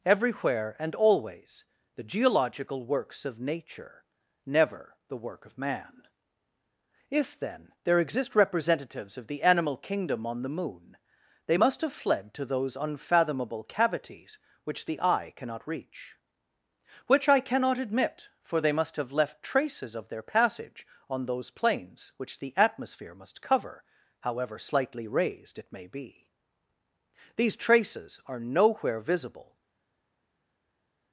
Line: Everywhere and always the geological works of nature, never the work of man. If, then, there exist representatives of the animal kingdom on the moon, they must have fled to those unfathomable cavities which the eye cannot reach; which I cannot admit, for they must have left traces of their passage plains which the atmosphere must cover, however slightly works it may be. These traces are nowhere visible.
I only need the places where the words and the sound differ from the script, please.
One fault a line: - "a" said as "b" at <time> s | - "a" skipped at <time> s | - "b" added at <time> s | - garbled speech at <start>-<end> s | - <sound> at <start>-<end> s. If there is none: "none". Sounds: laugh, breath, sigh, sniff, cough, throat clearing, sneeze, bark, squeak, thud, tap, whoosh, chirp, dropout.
- "on those" added at 21.1 s
- "works" said as "raised" at 25.1 s